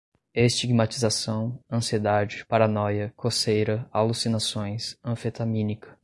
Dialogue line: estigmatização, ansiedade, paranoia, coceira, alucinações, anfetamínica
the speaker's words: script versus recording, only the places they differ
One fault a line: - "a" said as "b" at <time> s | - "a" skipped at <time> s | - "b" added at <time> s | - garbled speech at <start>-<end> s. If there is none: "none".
none